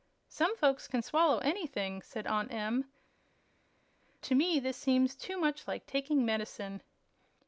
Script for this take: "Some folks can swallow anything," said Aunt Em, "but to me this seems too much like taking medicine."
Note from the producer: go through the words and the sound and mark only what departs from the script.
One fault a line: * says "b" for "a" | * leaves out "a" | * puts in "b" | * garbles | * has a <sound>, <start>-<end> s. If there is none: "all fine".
* leaves out "but"